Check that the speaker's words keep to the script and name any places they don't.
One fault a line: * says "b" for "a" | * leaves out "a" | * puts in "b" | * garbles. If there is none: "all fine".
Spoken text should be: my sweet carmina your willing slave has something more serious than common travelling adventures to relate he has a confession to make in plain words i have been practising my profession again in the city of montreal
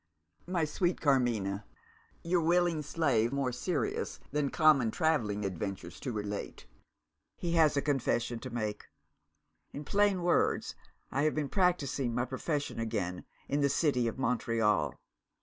* leaves out "has something"